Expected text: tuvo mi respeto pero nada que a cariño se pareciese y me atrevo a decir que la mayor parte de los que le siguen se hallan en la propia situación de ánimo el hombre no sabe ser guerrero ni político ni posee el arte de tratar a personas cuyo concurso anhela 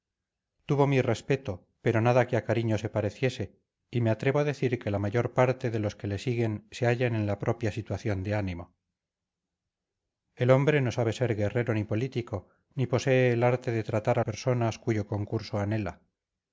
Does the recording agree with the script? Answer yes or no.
yes